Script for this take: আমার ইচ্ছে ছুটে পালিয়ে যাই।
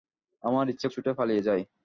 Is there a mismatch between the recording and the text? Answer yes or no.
no